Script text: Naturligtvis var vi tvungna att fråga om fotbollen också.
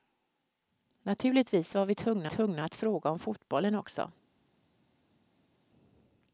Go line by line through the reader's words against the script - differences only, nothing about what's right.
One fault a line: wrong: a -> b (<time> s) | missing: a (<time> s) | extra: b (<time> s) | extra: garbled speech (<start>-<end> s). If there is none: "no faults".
extra: tvungna (2.3 s)